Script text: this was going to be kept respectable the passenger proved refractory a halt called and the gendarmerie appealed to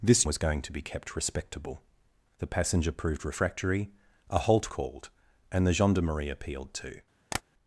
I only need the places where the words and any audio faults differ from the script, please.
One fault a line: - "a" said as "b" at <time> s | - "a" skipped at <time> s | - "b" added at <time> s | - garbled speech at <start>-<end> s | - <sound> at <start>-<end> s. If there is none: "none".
- tap at 7.3-7.4 s